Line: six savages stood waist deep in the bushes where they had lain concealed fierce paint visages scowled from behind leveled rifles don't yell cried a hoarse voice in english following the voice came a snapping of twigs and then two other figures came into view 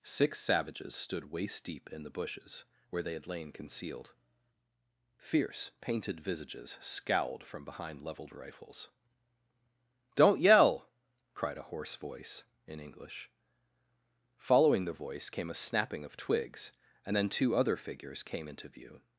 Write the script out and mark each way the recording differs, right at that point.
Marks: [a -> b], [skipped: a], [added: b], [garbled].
six savages stood waist deep in the bushes where they had lain concealed fierce [paint -> painted] visages scowled from behind leveled rifles don't yell cried a hoarse voice in english following the voice came a snapping of twigs and then two other figures came into view